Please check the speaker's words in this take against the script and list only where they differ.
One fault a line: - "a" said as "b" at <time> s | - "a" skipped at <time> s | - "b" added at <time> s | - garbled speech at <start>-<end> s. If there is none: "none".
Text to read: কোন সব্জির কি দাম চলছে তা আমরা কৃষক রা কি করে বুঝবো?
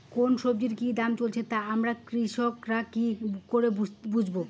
none